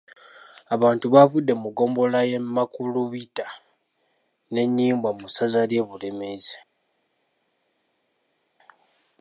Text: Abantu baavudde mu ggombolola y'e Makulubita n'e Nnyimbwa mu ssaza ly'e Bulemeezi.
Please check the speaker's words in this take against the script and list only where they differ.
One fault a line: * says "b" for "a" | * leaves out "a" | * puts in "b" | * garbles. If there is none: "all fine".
all fine